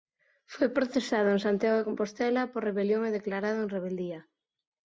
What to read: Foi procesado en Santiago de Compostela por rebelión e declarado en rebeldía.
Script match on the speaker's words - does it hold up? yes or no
yes